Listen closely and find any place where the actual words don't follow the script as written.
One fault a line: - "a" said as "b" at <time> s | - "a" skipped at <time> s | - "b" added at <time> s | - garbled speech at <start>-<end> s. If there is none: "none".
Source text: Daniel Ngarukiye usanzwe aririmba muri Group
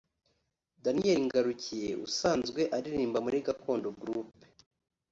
- "Gakondo" added at 3.5 s